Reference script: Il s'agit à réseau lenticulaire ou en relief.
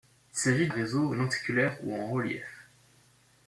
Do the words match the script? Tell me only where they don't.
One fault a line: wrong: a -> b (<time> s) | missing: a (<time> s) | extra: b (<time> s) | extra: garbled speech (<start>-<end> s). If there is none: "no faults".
no faults